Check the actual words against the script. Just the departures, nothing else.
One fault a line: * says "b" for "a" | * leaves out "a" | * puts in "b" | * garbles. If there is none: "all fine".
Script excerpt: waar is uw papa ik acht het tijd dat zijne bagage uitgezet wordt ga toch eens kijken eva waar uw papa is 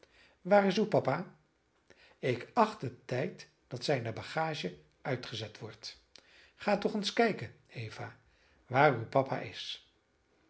all fine